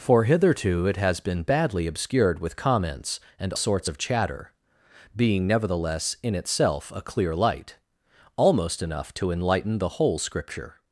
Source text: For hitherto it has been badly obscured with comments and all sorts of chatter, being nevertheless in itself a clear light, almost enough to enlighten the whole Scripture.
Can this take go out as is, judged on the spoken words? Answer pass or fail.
fail